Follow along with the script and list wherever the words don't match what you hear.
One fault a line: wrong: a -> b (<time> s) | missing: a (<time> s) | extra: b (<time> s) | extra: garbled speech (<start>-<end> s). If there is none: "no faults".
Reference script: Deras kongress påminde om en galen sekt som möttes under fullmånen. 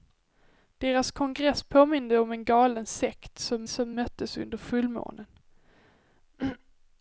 extra: som (3.7 s)